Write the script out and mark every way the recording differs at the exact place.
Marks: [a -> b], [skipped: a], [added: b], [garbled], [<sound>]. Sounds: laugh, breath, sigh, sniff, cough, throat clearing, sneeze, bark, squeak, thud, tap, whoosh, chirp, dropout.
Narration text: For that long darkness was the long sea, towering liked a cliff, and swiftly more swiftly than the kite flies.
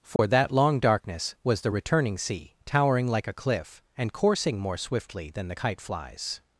For [dropout] that long darkness was the [long -> returning] sea, towering [liked -> like] a cliff, and [swiftly -> coursing] more swiftly than the kite flies.